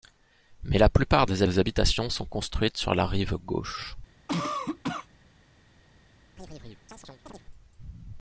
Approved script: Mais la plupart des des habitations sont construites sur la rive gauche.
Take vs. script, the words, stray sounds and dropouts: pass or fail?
fail